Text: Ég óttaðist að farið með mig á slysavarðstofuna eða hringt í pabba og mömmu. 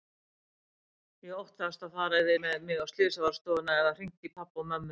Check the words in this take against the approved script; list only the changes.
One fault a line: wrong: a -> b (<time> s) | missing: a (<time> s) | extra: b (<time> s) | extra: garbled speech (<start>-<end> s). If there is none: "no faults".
no faults